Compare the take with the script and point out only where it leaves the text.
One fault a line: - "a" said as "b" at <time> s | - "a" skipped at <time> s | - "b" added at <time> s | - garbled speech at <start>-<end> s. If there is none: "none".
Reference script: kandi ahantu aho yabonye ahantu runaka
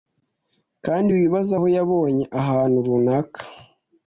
- "ahantu" said as "wibaze" at 1.2 s